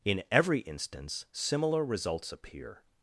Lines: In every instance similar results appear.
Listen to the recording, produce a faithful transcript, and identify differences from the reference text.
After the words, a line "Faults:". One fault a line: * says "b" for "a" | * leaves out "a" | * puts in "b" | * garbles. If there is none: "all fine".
In every instance similar results appear.
Faults:
all fine